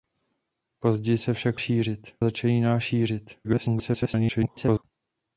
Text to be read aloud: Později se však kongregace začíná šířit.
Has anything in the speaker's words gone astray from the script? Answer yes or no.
yes